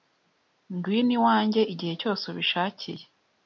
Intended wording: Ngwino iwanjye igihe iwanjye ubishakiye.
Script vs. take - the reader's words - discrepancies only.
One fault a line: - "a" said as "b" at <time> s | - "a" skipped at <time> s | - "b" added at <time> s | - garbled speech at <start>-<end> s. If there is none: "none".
- "iwanjye" said as "cyose" at 2.0 s